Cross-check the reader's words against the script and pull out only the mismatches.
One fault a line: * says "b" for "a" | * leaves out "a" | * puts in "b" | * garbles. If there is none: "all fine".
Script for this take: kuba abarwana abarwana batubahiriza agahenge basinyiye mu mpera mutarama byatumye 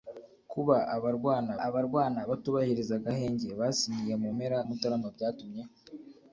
all fine